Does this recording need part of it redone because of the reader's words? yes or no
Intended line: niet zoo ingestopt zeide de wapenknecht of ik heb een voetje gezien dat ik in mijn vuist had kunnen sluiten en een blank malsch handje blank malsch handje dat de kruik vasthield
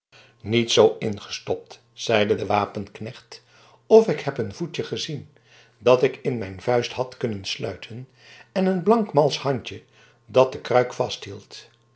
yes